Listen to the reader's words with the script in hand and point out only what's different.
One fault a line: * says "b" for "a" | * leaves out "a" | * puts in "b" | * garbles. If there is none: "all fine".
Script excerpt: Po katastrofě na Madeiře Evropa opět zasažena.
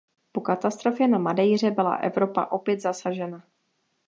* puts in "byla"